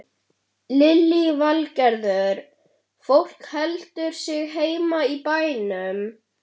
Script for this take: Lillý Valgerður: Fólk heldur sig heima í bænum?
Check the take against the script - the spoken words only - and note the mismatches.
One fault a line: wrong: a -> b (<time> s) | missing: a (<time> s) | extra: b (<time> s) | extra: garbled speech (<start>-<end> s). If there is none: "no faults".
no faults